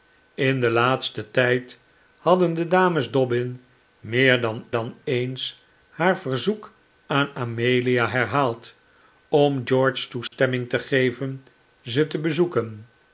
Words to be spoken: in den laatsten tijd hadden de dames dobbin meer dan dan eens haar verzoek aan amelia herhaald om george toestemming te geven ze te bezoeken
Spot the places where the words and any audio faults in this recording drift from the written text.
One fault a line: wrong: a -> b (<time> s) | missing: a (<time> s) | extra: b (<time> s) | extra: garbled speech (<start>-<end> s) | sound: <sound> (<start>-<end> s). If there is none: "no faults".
sound: dropout (10.3-10.3 s)